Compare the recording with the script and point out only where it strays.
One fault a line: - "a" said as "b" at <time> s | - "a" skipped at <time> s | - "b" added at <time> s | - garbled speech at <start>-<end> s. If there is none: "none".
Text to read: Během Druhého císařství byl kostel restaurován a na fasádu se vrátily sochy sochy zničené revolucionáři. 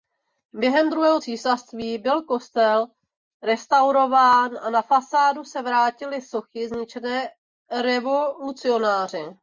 - "sochy" skipped at 6.7 s